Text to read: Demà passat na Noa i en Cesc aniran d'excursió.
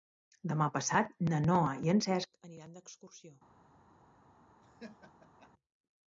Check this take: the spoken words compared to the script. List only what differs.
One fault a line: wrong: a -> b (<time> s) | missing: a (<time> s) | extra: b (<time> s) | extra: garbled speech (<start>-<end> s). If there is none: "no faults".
no faults